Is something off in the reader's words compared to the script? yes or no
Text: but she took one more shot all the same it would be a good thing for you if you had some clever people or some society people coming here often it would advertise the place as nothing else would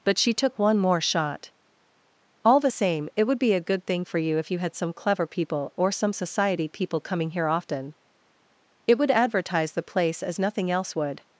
no